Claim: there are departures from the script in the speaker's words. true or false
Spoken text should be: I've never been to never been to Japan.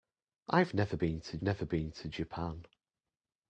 false